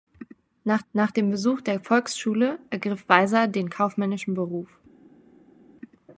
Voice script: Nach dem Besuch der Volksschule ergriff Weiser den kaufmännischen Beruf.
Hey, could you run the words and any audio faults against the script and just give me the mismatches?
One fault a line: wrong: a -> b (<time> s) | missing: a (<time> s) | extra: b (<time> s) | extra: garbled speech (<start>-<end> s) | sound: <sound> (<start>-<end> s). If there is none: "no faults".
extra: nach (0.9 s)